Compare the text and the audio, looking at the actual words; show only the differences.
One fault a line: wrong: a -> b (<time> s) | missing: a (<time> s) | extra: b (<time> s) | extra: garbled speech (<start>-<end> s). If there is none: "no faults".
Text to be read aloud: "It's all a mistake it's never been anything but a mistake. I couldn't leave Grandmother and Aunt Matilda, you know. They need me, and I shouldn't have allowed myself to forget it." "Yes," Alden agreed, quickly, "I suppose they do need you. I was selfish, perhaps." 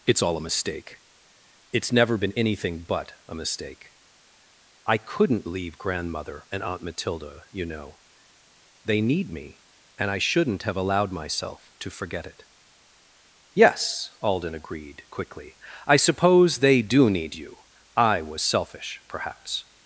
no faults